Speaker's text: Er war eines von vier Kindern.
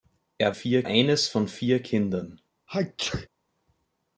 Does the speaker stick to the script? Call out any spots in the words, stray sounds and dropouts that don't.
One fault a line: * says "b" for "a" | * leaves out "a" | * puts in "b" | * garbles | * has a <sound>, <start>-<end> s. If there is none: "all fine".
* says "vier" for "war"
* has a sneeze, 2.7-3.3 s